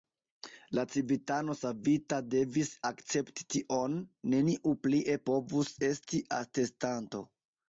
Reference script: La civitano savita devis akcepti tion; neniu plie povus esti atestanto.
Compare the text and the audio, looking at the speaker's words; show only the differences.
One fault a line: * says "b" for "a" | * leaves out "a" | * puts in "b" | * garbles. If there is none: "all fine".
all fine